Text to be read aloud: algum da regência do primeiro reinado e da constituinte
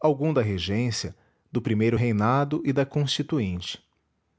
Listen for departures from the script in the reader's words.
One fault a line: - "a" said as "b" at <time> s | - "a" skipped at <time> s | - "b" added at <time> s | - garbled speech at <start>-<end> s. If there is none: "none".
none